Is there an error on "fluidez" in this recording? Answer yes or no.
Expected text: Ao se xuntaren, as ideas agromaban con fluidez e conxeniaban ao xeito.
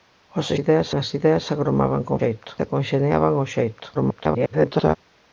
yes